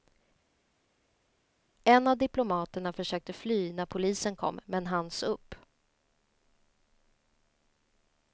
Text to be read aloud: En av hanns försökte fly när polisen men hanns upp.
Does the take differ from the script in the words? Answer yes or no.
yes